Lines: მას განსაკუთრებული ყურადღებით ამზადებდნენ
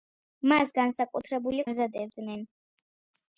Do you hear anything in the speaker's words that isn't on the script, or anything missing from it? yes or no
yes